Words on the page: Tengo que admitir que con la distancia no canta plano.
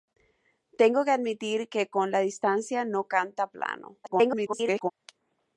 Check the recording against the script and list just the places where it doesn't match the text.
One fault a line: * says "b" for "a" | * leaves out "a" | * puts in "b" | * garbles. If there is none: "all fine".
* garbles